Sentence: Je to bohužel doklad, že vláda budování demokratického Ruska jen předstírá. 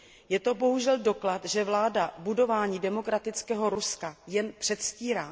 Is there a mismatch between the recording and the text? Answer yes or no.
no